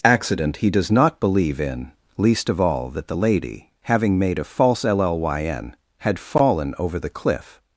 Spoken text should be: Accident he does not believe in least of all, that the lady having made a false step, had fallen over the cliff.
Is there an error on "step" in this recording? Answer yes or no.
yes